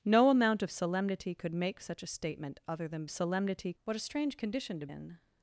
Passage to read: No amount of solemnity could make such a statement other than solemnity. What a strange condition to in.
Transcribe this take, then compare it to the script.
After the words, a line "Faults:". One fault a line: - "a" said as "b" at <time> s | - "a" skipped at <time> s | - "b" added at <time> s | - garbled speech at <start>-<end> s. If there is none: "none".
No amount of solemnity could make such a statement other than solemnity. What a strange condition to in.
Faults:
none